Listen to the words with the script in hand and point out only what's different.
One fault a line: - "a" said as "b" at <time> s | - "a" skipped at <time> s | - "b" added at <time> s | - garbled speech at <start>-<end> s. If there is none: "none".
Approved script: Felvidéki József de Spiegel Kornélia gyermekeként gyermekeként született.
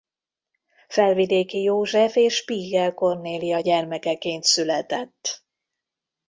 - "de" said as "és" at 2.1 s
- "gyermekeként" skipped at 4.4 s